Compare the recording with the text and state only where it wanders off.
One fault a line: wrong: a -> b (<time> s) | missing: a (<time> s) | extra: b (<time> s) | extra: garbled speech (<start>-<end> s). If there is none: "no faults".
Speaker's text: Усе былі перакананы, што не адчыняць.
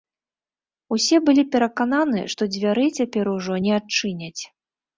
extra: дзвярэй цяпер ужо (2.5 s)